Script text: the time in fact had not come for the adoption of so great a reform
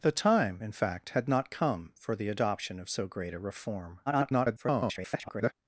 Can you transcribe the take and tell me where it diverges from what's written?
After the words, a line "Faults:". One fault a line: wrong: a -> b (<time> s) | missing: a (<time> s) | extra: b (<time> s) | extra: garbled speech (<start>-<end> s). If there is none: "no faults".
the time in fact had not come for the adoption of so great a reform [garbled]
Faults:
extra: garbled speech (4.1-5.5 s)